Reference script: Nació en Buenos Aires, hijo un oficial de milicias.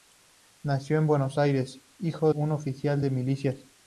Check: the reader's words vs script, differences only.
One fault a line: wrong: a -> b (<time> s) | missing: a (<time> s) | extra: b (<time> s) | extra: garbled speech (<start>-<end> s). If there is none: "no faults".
no faults